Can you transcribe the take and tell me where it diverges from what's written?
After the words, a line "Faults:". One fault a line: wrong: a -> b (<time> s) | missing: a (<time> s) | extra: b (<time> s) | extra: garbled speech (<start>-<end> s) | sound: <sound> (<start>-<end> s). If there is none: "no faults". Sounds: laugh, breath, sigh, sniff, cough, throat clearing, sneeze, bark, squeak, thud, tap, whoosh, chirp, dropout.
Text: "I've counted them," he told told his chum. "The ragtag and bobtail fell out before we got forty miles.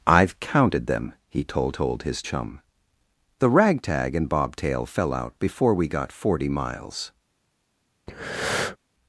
"I've counted them," he told told his chum. "The ragtag and bobtail fell out before we got forty miles.
Faults:
sound: breath (8.1-8.8 s)